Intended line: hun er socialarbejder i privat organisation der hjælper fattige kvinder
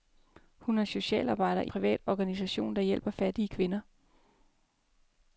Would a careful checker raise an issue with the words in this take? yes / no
no